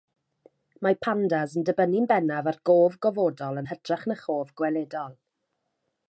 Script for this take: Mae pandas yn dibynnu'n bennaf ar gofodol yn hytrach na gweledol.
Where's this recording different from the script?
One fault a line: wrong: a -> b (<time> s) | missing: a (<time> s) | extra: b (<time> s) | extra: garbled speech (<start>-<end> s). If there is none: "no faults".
extra: gof (2.7 s)
extra: chof (4.2 s)